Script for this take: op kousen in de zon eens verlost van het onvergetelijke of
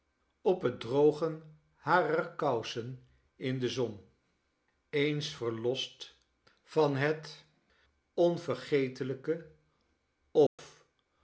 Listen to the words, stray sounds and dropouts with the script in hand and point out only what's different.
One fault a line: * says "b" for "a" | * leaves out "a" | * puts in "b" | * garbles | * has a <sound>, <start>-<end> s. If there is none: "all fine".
* puts in "het drogen harer"
* has a dropout, 10.5-10.6 s